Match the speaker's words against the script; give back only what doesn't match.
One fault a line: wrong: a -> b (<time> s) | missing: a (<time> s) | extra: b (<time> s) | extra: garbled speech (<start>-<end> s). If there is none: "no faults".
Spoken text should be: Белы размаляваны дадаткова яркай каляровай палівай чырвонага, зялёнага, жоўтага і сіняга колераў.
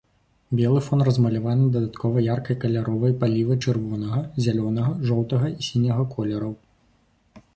extra: фон (0.8 s)